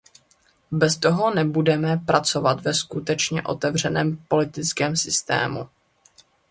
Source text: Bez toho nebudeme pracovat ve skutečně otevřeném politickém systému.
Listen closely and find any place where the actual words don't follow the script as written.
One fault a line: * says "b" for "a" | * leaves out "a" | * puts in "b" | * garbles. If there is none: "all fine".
all fine